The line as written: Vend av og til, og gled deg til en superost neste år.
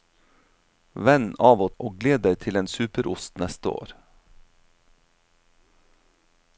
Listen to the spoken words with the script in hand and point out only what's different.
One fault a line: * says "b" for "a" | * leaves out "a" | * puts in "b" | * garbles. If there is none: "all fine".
* leaves out "til"